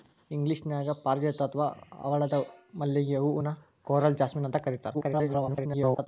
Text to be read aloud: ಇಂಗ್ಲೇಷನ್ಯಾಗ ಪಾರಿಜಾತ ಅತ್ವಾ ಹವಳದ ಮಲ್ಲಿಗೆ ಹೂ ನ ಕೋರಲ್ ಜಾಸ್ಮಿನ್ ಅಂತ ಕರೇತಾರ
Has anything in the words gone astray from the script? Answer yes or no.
yes